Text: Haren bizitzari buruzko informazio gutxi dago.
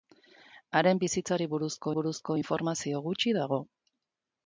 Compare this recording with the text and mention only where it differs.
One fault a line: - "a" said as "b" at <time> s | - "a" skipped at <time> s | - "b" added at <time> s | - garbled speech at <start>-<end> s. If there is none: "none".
- "buruzko" added at 1.9 s